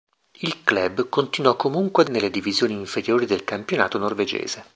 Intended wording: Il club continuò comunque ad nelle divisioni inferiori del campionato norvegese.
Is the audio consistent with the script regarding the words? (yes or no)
yes